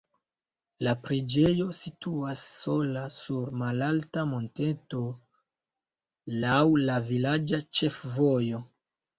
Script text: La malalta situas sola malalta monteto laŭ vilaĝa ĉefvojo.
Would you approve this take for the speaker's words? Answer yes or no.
no